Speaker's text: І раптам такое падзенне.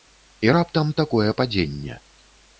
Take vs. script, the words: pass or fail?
pass